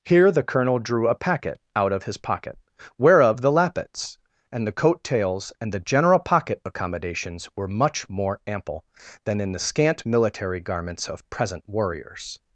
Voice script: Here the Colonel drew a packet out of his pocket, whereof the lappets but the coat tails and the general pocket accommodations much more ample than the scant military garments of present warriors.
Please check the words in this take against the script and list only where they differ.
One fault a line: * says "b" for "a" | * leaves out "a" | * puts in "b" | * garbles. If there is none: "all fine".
* says "and" for "but"
* puts in "were"
* puts in "in"